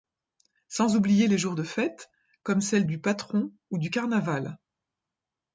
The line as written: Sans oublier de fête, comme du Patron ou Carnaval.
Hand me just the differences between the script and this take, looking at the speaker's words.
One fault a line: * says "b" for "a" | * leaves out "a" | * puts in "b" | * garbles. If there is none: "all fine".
* puts in "les jours"
* puts in "celles"
* puts in "du"